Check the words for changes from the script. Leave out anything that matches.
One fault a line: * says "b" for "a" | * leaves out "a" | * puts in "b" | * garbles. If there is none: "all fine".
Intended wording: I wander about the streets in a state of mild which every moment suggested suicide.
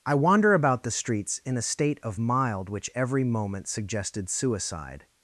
all fine